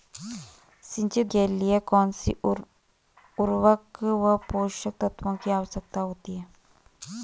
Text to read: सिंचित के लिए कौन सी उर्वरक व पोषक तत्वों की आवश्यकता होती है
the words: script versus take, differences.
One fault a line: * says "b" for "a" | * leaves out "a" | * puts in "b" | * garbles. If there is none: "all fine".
all fine